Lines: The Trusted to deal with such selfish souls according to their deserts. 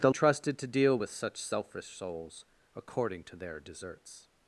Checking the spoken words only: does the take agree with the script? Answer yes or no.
yes